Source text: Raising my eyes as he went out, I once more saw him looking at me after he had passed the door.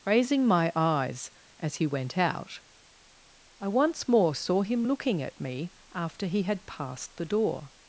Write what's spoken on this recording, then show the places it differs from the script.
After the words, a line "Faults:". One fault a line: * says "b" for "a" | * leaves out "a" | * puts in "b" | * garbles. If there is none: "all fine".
Raising my eyes as he went out, I once more saw him looking at me after he had passed the door.
Faults:
all fine